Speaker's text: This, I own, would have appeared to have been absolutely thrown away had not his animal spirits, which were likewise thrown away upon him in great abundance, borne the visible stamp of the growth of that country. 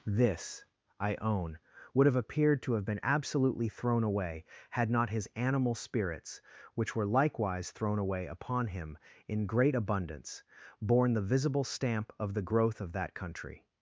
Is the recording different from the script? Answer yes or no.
no